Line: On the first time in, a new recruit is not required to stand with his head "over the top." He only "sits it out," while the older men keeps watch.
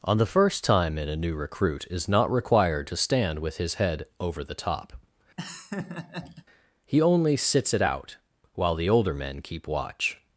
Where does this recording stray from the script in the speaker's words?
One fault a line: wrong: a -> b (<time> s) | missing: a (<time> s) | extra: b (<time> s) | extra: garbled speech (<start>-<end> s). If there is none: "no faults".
wrong: keeps -> keep (9.4 s)